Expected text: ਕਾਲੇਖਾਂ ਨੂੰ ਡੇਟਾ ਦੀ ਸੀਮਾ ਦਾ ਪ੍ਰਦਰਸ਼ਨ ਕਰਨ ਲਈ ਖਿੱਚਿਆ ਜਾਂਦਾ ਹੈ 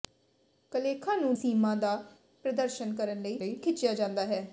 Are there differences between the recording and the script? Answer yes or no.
yes